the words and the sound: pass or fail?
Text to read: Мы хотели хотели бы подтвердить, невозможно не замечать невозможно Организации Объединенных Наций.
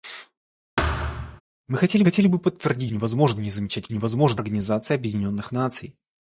fail